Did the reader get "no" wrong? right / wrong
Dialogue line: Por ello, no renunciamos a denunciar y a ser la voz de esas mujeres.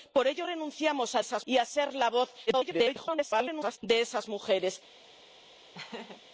wrong